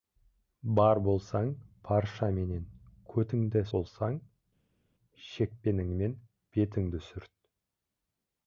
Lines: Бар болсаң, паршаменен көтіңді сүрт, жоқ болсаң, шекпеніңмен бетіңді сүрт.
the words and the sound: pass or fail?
fail